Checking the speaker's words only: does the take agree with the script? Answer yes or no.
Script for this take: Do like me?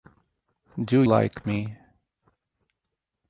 yes